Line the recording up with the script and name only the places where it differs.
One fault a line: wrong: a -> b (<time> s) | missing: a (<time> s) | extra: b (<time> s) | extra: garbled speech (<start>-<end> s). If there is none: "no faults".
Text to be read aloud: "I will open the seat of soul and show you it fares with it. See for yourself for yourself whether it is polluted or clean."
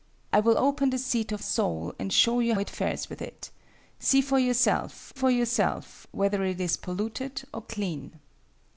no faults